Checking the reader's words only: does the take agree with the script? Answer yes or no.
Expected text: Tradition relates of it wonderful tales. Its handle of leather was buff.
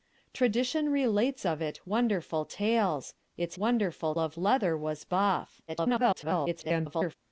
no